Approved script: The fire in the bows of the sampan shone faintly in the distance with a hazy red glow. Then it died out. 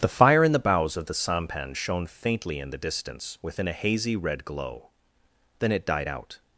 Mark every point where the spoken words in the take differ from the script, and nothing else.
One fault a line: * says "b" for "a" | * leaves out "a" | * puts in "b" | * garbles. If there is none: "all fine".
* says "within" for "with"